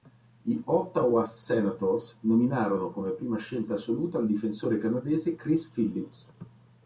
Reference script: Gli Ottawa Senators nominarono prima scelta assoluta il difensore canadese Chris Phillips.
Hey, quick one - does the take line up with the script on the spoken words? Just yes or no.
no